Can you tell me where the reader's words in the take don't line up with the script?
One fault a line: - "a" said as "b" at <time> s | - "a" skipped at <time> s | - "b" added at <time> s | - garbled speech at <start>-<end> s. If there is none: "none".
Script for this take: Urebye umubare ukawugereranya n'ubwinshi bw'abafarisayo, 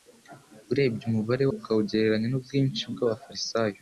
none